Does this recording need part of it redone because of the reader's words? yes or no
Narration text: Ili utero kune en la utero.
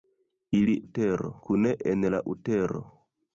no